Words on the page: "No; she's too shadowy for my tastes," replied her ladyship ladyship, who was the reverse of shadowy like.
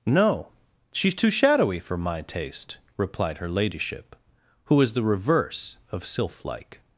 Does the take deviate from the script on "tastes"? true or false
true